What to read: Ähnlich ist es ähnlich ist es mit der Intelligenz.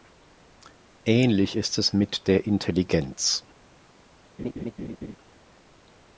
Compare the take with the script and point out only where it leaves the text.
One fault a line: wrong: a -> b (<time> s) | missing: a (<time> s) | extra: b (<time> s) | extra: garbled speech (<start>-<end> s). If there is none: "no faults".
missing: ähnlich ist es (1.9 s)